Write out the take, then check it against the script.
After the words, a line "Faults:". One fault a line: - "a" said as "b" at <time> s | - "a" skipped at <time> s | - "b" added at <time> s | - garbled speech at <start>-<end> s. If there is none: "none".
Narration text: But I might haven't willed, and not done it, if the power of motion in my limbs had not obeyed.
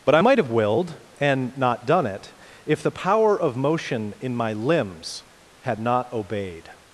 But I might have willed, and not done it, if the power of motion in my limbs had not obeyed.
Faults:
- "haven't" said as "have" at 0.4 s